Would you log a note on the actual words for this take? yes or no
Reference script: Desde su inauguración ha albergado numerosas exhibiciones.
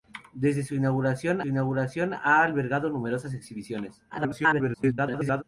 yes